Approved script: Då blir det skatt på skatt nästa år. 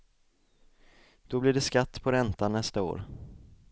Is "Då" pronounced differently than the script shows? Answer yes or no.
no